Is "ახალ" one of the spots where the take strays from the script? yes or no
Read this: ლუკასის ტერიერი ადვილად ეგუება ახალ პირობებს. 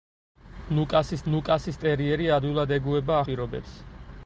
yes